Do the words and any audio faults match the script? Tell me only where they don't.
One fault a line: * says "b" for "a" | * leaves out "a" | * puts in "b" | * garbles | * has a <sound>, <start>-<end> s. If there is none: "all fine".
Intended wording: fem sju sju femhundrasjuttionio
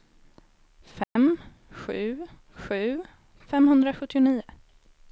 * has a dropout, 1.0-1.2 s